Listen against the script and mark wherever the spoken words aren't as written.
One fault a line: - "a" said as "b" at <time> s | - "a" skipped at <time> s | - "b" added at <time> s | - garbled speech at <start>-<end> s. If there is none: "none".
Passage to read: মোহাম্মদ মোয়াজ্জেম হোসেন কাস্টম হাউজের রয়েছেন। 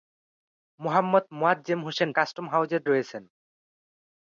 none